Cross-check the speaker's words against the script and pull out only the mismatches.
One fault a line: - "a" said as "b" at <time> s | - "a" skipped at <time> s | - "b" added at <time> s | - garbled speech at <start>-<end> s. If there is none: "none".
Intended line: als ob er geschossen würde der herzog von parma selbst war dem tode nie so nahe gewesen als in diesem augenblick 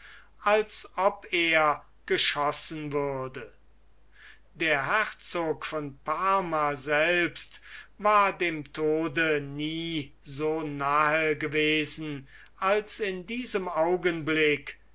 none